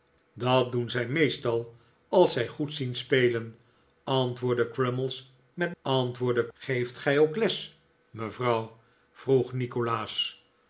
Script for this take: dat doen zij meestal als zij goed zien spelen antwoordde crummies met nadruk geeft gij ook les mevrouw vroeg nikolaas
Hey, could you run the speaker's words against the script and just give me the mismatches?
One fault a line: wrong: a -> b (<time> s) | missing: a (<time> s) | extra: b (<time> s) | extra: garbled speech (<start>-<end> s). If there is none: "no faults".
wrong: nadruk -> antwoordde (5.8 s)